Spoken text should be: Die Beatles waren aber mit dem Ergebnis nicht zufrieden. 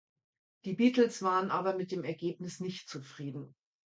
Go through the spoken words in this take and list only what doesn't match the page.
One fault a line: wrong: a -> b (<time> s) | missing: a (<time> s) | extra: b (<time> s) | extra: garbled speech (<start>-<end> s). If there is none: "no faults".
no faults